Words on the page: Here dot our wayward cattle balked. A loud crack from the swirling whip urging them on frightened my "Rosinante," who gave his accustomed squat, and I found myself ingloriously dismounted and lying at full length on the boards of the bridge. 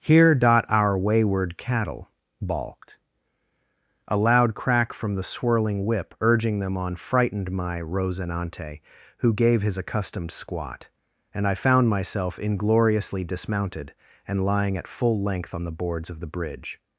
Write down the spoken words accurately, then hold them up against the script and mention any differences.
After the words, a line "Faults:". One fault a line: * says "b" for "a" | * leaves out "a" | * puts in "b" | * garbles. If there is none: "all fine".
Here dot our wayward cattle balked. A loud crack from the swirling whip urging them on frightened my "Rosinante," who gave his accustomed squat, and I found myself ingloriously dismounted and lying at full length on the boards of the bridge.
Faults:
all fine